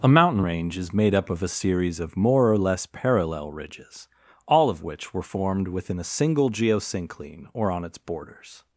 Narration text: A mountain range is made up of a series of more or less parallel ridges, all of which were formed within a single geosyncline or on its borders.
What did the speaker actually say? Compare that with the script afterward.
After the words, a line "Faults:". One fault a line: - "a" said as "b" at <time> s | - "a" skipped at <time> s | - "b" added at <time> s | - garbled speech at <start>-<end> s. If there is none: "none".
A mountain range is made up of a series of more or less parallel ridges, all of which were formed within a single geosyncline or on its borders.
Faults:
none